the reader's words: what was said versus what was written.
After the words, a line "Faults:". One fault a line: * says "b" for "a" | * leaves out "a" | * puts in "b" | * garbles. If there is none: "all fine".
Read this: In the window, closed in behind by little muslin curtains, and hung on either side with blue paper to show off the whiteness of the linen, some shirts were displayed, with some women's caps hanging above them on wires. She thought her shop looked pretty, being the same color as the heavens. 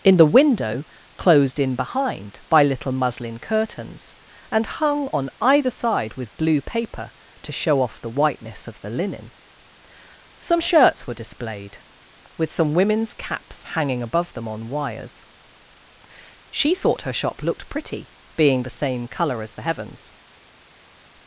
In the window, closed in behind by little muslin curtains, and hung on either side with blue paper to show off the whiteness of the linen, some shirts were displayed, with some women's caps hanging above them on wires. She thought her shop looked pretty, being the same color as the heavens.
Faults:
all fine